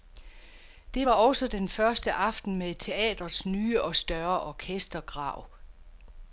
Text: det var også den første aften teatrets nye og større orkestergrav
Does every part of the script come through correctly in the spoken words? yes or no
no